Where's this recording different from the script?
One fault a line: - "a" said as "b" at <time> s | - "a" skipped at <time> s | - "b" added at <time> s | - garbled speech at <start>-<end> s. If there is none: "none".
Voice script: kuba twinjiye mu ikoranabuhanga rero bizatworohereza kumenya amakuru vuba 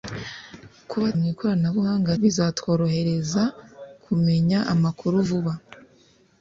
- "twinjiye" skipped at 1.1 s
- "rero" skipped at 2.1 s